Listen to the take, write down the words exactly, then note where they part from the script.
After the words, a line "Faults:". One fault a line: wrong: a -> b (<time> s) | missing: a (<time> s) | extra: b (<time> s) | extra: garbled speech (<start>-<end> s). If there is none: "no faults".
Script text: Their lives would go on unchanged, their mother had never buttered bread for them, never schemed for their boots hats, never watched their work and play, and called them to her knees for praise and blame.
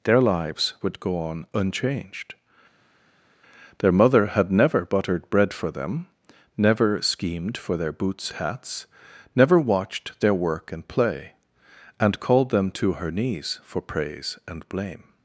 Their lives would go on unchanged, their mother had never buttered bread for them, never schemed for their boots hats, never watched their work and play, and called them to her knees for praise and blame.
Faults:
no faults